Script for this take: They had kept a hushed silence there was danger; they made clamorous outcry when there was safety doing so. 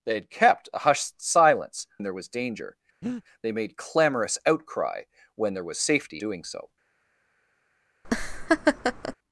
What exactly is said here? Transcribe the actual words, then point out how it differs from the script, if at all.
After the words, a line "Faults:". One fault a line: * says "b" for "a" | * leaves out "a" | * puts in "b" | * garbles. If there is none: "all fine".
They had kept a hushed silence there was danger; they made clamorous outcry when there was safety doing so.
Faults:
all fine